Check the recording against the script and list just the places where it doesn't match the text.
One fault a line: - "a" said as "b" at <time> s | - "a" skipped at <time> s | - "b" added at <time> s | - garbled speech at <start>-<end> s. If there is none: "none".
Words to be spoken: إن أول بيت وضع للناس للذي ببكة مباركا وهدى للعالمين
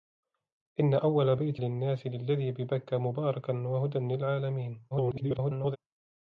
- "وضع" skipped at 1.6 s
- garbled speech at 4.9-5.8 s